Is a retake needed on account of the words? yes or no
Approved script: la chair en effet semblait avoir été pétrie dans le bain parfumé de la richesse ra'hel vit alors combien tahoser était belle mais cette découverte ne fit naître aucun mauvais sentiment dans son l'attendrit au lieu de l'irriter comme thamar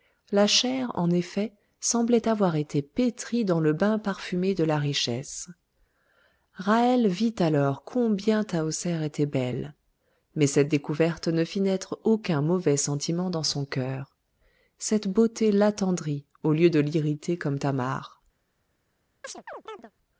yes